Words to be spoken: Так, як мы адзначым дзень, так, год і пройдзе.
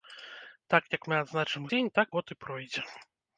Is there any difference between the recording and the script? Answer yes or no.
no